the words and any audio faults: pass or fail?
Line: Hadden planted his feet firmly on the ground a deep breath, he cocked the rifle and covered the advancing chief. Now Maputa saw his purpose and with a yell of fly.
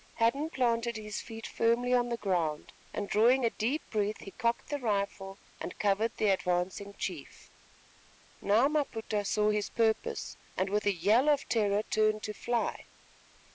fail